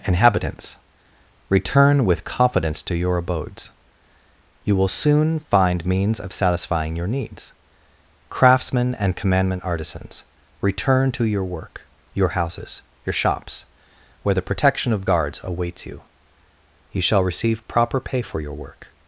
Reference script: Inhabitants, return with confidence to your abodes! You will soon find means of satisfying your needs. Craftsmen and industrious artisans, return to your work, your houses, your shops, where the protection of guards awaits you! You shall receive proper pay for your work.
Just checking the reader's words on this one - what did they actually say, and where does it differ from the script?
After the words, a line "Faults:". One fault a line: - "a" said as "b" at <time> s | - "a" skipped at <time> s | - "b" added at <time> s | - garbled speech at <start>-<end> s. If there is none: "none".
Inhabitants, return with confidence to your abodes! You will soon find means of satisfying your needs. Craftsmen and commandment artisans, return to your work, your houses, your shops, where the protection of guards awaits you! You shall receive proper pay for your work.
Faults:
- "industrious" said as "commandment" at 9.2 s